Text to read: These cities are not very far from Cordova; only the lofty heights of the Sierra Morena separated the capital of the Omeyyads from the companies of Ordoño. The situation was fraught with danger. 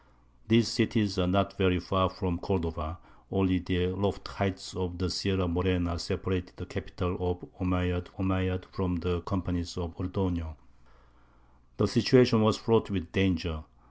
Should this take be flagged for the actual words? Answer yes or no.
yes